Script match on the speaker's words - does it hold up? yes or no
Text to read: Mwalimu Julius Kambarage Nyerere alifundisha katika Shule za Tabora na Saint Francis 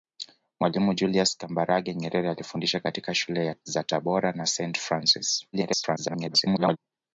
no